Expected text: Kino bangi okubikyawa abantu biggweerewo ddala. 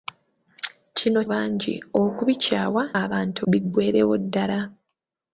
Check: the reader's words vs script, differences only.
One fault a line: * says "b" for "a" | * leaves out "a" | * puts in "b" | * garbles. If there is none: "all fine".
all fine